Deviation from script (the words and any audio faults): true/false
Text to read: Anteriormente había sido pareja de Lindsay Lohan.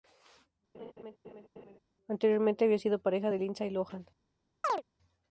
true